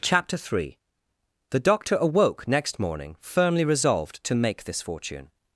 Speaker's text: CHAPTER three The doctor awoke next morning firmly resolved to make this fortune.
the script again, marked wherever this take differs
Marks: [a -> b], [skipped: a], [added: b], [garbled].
CHAPTER three The doctor awoke next morning firmly resolved to make this fortune.